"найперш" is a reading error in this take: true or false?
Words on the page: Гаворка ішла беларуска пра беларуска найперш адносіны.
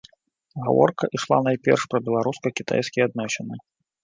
true